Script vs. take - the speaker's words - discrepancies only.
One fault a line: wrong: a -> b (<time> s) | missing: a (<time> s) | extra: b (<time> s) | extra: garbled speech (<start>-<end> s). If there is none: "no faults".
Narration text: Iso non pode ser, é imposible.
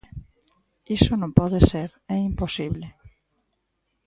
no faults